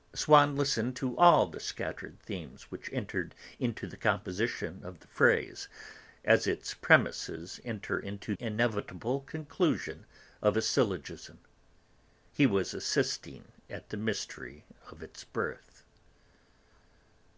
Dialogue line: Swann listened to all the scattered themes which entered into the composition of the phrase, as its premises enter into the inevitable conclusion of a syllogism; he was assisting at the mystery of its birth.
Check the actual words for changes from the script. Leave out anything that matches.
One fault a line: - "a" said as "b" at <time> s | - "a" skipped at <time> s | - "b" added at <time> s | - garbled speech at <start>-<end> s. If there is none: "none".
- "the" skipped at 8.3 s